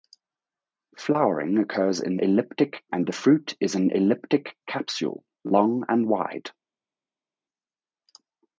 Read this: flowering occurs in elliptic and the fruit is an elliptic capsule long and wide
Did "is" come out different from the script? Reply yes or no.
no